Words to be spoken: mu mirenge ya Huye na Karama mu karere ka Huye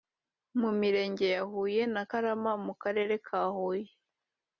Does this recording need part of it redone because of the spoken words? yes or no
no